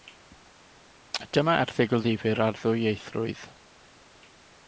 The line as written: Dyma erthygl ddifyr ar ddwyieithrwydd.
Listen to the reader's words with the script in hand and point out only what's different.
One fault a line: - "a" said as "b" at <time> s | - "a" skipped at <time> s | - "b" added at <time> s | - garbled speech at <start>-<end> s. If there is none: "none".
none